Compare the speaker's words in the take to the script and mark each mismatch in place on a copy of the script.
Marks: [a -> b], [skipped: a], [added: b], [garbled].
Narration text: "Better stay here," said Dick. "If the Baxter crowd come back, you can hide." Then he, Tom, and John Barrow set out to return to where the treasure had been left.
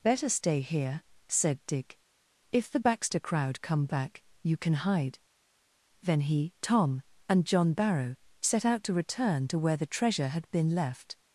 "Better stay here," said Dick. "If the Baxter crowd come back, you can hide." Then he, Tom, and John Barrow set out to return to where the treasure had been left.